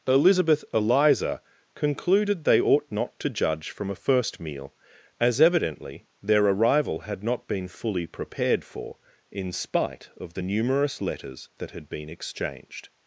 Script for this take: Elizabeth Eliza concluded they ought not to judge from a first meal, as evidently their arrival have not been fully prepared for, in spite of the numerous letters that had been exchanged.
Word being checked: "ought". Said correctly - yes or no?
yes